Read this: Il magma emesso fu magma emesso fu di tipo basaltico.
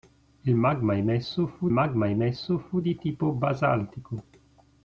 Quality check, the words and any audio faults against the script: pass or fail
pass